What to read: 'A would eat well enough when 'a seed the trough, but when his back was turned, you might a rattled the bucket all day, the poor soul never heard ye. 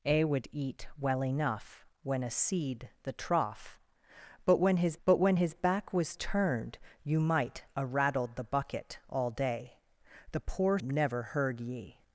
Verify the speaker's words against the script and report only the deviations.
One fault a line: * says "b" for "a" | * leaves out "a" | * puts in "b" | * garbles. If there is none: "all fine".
* puts in "but when his"
* leaves out "soul"